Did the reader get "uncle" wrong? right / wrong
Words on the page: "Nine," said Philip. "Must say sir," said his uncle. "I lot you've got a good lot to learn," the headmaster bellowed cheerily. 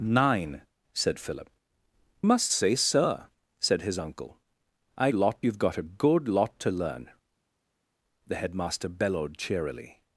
right